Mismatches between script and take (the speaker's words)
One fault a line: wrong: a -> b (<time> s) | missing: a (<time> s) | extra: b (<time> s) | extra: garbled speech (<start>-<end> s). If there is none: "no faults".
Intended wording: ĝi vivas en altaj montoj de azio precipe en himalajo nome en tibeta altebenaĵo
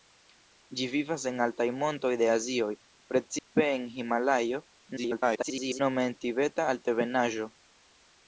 extra: garbled speech (5.0-5.8 s)